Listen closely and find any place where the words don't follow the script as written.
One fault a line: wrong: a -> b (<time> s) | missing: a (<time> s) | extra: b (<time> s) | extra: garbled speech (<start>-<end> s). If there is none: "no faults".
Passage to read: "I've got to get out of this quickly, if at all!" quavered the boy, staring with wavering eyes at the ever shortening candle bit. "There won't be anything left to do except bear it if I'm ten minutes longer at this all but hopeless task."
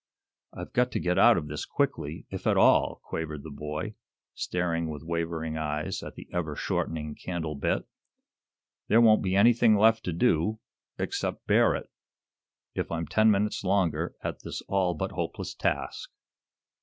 no faults